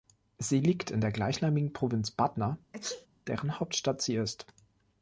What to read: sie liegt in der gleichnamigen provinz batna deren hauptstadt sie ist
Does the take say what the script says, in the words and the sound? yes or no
no